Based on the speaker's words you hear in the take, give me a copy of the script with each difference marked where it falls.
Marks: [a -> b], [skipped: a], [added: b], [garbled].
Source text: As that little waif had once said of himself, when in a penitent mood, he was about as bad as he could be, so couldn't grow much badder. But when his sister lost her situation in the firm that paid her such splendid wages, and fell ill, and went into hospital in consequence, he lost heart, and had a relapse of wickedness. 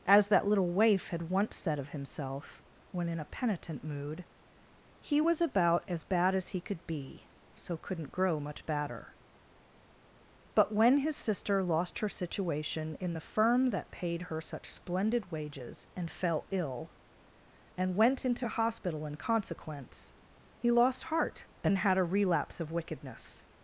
As that little waif had once said of himself, when in a penitent mood, he was about as bad as he could be, so couldn't grow much badder. But when his sister lost her situation in the firm that paid her such splendid wages, and fell ill, and went into hospital in consequence, he lost heart, and had a relapse of wickedness.